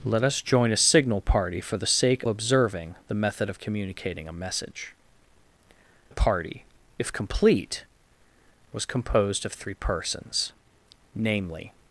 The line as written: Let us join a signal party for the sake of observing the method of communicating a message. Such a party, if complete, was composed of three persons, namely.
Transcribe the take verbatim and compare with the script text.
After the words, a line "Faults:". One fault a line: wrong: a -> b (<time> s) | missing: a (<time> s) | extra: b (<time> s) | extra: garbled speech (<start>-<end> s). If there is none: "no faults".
Let us join a signal party for the sake observing the method of communicating a message. A party, if complete, was composed of three persons, namely.
Faults:
missing: of (2.2 s)
missing: Such (4.9 s)